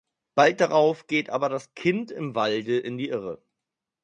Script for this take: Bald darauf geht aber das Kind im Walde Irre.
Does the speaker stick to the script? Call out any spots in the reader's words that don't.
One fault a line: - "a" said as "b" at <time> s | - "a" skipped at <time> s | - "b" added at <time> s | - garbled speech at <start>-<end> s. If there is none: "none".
- "in die" added at 2.8 s